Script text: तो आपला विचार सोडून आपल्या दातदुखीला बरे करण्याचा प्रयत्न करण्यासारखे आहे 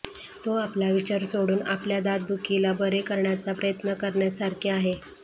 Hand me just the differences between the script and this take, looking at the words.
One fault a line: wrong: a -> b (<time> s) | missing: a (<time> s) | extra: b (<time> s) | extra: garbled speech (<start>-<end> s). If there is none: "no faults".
no faults